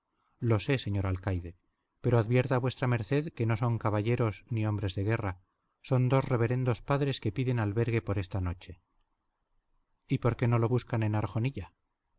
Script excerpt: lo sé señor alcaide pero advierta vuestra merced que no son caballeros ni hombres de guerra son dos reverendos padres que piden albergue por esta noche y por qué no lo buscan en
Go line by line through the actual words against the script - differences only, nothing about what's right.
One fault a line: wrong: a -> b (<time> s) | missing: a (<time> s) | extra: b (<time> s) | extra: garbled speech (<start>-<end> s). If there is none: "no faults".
no faults